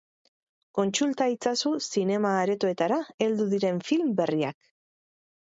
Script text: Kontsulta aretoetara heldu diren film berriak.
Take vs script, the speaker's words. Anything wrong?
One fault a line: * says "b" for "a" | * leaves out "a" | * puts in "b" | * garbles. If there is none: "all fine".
* puts in "itzazu zinema"